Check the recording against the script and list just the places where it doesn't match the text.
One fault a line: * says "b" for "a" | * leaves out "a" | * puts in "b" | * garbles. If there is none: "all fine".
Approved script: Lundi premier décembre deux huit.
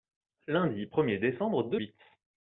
all fine